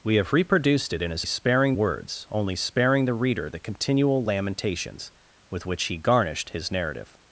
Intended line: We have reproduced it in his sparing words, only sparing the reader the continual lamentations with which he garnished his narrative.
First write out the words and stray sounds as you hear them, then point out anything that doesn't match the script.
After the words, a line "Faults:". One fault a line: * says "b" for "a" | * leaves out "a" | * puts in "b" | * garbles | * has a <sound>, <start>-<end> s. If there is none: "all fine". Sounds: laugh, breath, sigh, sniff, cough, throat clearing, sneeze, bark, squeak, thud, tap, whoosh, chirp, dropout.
We have reproduced it in his sparing words, only sparing the reader the continual lamentations with which he garnished his narrative.
Faults:
all fine